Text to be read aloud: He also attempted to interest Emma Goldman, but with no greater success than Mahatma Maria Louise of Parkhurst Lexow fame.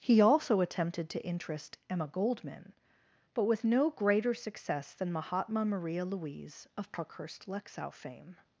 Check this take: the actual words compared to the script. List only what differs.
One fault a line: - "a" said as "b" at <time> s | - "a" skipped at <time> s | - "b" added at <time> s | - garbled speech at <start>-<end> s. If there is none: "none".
none